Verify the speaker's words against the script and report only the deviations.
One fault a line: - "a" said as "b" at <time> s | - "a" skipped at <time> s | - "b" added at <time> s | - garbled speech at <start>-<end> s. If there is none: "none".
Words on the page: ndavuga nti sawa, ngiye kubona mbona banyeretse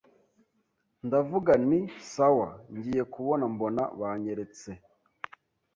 none